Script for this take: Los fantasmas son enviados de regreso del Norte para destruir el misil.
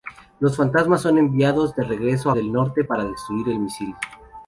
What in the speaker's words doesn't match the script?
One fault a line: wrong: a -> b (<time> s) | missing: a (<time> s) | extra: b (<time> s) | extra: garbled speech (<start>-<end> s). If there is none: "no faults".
no faults